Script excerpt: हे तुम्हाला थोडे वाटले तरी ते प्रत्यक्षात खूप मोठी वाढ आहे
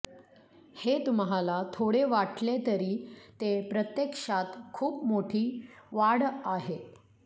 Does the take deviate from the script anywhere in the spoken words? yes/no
no